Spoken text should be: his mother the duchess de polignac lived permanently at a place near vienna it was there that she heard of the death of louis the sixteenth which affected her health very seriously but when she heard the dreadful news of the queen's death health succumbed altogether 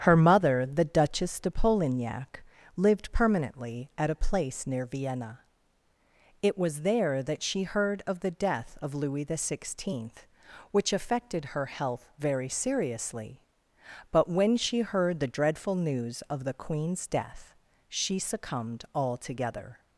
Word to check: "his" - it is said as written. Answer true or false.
false